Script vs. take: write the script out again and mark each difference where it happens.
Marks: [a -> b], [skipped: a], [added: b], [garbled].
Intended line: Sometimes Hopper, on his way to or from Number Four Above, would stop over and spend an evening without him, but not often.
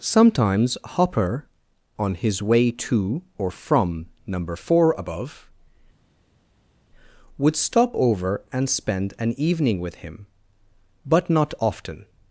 Sometimes Hopper, on his way to or from Number Four Above, would stop over and spend an evening [without -> with] him, but not often.